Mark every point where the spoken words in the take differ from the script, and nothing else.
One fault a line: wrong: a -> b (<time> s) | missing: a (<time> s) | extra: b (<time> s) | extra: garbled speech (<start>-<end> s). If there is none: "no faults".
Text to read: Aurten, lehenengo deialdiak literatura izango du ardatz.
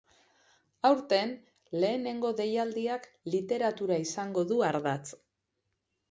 no faults